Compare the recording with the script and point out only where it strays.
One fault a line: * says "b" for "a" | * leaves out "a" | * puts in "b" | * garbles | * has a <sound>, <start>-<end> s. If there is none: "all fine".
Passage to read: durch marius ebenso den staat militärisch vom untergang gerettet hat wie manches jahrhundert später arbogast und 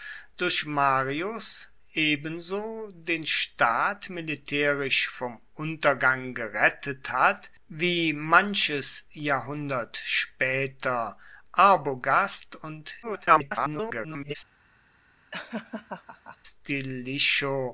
* garbles
* has a laugh, 15.3-16.4 s